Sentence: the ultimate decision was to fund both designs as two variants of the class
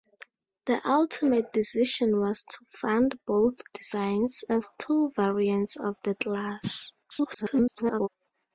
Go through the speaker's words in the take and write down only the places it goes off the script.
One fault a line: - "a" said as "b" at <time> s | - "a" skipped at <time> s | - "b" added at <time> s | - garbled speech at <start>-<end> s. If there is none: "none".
- garbled speech at 7.1-8.1 s